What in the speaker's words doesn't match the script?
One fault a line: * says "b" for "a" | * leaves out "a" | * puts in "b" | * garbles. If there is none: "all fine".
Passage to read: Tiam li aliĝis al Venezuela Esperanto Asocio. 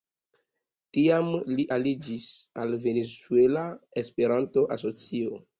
all fine